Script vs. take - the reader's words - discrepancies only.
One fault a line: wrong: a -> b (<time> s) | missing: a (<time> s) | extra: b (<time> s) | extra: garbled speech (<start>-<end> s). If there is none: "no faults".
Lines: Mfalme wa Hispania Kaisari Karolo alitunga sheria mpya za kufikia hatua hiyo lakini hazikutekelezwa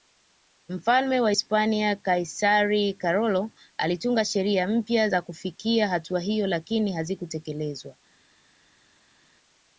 no faults